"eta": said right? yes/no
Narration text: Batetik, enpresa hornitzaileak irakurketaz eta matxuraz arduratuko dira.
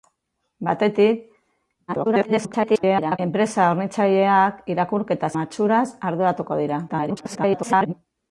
no